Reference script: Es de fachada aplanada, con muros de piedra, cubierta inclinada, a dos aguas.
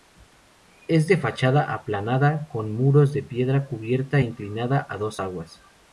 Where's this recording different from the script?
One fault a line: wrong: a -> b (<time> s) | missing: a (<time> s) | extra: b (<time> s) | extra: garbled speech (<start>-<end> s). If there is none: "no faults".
no faults